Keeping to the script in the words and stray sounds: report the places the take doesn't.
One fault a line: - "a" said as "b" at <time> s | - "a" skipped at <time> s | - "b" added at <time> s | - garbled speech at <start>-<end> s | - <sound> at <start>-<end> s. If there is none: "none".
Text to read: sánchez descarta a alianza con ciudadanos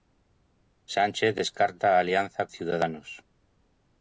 - "con" skipped at 2.5 s